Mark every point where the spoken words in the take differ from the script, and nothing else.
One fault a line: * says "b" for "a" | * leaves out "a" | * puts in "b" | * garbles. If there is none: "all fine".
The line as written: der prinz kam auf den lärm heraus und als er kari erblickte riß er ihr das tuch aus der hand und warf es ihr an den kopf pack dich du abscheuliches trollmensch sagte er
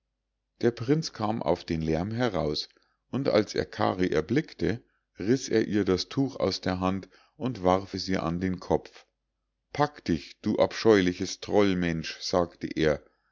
all fine